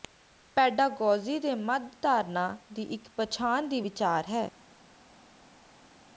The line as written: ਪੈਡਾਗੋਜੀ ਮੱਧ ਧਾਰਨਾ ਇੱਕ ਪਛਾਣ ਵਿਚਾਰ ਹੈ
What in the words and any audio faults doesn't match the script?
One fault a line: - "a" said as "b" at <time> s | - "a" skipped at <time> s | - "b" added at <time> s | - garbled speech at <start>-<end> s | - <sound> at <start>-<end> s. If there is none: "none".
- "ਦੇ" added at 1.4 s
- "ਦੀ" added at 2.7 s
- "ਦੀ" added at 3.7 s